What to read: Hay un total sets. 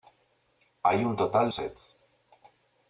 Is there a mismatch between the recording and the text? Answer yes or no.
no